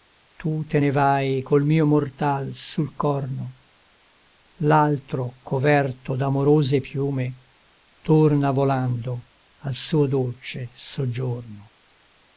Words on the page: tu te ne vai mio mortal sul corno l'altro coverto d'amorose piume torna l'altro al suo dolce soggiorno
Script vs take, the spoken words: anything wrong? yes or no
yes